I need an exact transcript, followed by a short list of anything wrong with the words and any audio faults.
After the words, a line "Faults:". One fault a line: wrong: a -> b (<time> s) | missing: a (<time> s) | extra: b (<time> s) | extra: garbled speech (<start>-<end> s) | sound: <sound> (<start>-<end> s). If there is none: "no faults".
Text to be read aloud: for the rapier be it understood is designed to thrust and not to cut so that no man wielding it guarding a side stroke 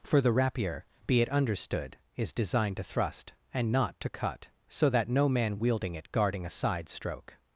for the rapier be it understood is designed to thrust and not to cut so that no man wielding it guarding a side stroke
Faults:
no faults